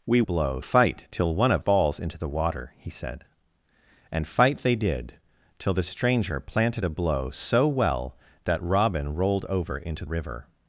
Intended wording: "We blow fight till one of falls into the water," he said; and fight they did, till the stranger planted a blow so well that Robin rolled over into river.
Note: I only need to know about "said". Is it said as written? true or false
true